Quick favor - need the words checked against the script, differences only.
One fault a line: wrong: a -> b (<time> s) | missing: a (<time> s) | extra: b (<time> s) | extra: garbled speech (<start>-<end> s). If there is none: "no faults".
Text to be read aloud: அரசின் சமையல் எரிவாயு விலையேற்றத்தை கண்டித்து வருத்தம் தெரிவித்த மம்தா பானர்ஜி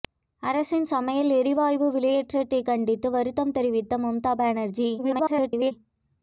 extra: garbled speech (5.0-5.7 s)